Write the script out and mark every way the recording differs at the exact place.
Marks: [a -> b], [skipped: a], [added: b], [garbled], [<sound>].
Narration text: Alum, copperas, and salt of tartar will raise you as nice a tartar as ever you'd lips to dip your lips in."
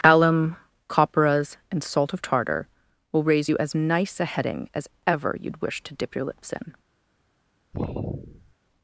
Alum, copperas, and salt of tartar will raise you as nice a [tartar -> heading] as ever you'd [lips -> wish] to dip your lips in." [sigh]